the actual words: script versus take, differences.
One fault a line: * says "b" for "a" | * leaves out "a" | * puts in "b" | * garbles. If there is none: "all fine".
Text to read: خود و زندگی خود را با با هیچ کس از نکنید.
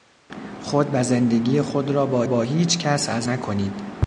all fine